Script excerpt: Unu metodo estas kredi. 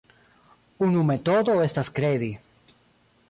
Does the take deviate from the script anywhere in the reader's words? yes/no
no